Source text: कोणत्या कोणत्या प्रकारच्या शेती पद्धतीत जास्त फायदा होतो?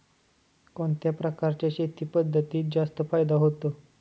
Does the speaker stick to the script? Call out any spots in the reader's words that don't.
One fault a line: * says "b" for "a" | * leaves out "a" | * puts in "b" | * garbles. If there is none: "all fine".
* leaves out "कोणत्या"